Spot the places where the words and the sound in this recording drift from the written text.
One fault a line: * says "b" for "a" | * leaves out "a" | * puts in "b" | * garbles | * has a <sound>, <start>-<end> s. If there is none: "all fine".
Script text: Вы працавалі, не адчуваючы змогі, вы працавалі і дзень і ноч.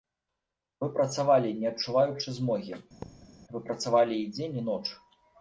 * has a thud, 3.0-3.3 s